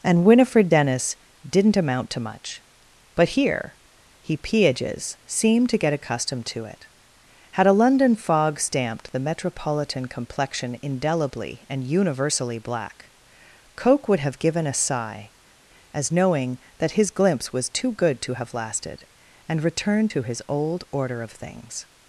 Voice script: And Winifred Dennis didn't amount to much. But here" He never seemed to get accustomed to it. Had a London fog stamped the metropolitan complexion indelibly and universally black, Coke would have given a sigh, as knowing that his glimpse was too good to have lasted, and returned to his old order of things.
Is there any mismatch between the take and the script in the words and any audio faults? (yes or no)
yes